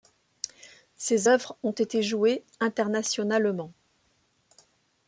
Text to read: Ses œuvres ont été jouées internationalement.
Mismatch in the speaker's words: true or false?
false